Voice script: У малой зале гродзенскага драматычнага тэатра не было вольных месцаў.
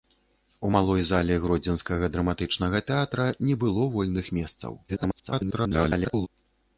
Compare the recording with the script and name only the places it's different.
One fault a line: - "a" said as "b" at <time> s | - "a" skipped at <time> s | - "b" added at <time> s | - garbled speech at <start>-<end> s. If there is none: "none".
- garbled speech at 4.9-6.3 s